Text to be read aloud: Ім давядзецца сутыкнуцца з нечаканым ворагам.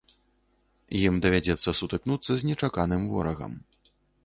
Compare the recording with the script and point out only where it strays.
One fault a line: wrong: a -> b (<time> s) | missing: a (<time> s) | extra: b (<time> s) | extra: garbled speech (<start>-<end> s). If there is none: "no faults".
no faults